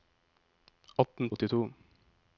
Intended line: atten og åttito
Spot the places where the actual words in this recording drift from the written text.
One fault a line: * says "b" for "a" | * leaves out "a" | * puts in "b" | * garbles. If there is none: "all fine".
all fine